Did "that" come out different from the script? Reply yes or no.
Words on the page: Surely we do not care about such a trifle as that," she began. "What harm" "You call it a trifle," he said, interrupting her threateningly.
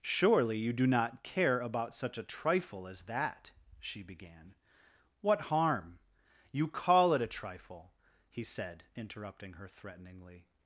no